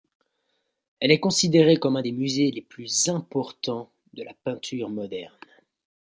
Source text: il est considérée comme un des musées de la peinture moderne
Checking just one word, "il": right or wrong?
wrong